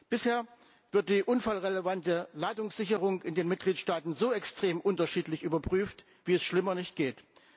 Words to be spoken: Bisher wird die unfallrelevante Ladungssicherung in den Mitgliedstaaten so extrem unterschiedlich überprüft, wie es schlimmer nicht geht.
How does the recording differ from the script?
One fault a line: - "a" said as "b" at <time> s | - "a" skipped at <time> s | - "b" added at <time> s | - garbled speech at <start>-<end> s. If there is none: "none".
none